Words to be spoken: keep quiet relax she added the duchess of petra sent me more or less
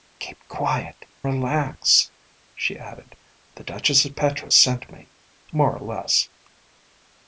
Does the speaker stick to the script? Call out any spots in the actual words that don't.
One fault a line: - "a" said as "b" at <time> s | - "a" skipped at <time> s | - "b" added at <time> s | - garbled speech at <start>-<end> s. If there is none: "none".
none